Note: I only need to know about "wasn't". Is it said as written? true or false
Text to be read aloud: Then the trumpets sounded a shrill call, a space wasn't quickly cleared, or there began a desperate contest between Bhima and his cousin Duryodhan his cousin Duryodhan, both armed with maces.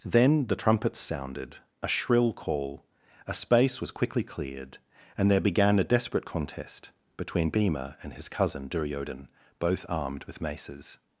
false